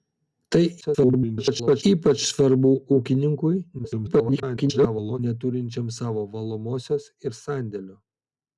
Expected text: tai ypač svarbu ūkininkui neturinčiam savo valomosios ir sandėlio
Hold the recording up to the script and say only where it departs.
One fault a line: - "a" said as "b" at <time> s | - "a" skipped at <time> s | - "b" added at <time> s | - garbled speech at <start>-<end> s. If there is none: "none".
- garbled speech at 0.8-1.8 s
- garbled speech at 3.8-5.2 s